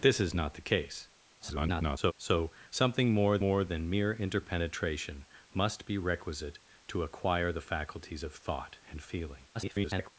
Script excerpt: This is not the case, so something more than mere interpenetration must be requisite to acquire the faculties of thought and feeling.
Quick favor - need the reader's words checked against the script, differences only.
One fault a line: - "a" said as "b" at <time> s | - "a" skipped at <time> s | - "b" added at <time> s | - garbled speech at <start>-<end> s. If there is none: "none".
- garbled speech at 1.4-2.1 s
- "more" added at 3.4 s
- garbled speech at 9.5-10.1 s